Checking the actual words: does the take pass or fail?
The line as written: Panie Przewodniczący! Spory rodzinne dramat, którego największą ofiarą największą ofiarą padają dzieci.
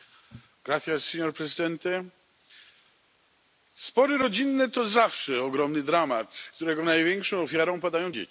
fail